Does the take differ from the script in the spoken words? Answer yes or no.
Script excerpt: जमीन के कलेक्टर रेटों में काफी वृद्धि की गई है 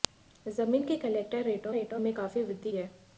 yes